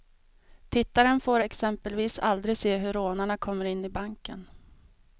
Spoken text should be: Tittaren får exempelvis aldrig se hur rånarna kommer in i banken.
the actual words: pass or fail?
pass